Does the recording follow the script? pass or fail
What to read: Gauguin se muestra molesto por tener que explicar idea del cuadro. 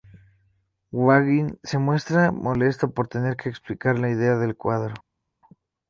fail